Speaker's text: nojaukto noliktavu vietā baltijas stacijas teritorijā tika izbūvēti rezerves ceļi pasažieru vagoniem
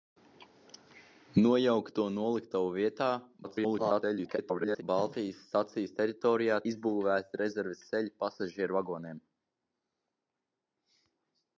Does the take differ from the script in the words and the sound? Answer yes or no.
yes